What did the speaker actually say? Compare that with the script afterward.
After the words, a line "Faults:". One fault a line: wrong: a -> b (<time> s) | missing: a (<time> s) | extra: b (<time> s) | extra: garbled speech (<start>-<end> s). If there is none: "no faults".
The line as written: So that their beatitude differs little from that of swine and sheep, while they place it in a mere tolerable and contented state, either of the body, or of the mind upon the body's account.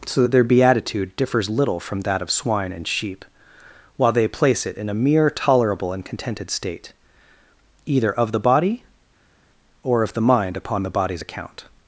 So that their beatitude differs little from that of swine and sheep, while they place it in a mere tolerable and contented state, either of the body, or of the mind upon the body's account.
Faults:
no faults